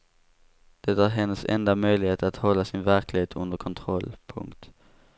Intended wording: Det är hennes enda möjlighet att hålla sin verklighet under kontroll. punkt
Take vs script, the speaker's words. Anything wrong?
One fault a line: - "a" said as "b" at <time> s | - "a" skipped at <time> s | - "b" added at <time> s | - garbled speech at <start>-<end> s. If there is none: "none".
none